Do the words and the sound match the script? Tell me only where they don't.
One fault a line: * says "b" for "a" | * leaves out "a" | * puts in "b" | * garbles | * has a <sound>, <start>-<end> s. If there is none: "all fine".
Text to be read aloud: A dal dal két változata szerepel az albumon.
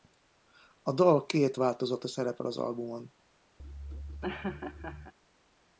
* leaves out "dal"
* has a laugh, 3.6-5.1 s